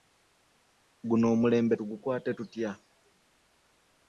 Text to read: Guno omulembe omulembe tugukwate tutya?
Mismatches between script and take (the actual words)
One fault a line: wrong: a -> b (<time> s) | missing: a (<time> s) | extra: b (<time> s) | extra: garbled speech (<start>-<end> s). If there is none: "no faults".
missing: omulembe (1.8 s)